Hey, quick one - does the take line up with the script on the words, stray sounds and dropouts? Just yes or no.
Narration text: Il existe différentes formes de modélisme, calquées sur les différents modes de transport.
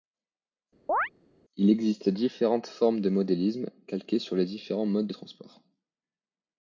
no